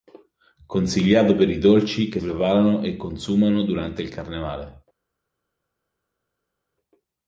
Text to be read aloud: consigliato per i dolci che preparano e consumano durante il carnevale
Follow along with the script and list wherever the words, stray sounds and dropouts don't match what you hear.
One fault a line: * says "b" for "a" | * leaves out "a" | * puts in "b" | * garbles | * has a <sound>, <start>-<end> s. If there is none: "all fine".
all fine